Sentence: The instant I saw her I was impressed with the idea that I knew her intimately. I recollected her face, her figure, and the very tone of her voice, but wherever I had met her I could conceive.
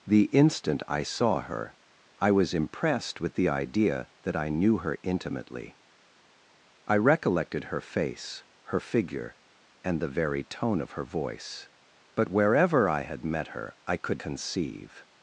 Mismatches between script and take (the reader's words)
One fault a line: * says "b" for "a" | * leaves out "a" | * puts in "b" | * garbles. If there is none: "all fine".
all fine